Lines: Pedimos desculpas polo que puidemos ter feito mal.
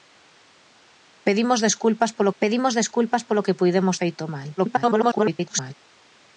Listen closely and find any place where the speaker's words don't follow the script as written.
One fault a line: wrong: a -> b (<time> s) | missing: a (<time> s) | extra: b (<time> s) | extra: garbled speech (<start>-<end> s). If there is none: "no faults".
extra: pedimos desculpas polo (2.4 s)
missing: ter (4.0 s)
extra: garbled speech (4.6-5.7 s)